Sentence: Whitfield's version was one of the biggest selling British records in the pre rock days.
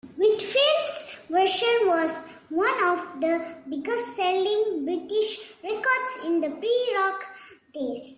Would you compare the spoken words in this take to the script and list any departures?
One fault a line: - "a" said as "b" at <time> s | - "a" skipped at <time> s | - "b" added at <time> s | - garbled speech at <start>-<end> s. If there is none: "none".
none